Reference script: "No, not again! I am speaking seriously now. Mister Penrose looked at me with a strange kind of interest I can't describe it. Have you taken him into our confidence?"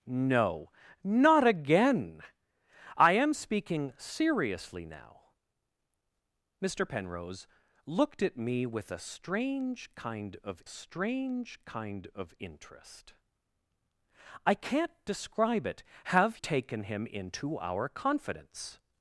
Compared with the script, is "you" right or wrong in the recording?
wrong